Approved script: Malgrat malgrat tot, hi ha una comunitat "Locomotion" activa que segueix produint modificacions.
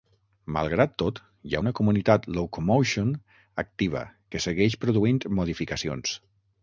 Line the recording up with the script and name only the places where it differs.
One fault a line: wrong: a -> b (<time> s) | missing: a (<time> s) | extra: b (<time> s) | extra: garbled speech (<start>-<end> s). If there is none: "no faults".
missing: malgrat (0.9 s)